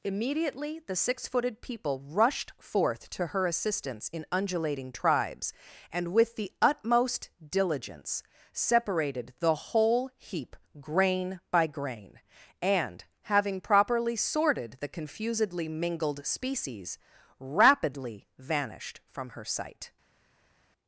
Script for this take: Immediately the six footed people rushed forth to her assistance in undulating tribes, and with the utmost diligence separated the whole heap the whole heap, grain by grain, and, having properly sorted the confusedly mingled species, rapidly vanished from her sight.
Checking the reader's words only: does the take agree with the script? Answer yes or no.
no